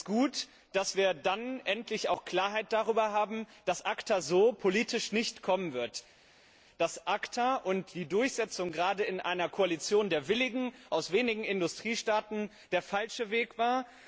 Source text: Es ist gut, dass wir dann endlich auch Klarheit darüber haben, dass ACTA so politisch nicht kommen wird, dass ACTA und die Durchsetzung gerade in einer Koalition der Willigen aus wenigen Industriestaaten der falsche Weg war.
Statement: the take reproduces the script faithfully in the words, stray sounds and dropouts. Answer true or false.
true